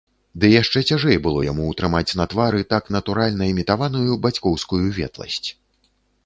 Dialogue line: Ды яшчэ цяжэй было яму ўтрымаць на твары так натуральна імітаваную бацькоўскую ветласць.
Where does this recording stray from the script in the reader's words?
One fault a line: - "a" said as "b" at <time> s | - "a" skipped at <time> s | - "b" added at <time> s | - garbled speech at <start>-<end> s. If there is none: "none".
none